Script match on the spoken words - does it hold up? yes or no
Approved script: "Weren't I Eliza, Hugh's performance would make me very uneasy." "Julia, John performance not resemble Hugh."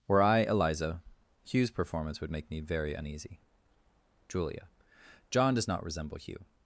no